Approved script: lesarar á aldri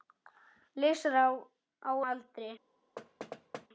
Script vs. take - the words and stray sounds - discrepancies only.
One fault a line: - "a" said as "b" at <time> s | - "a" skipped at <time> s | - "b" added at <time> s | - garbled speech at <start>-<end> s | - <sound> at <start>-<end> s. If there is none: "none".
- thud at 3.0-3.7 s